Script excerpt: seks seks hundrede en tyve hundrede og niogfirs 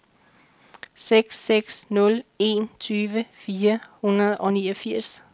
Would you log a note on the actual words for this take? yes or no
yes